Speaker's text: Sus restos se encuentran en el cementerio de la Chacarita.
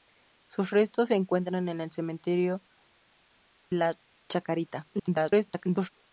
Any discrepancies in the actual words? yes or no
yes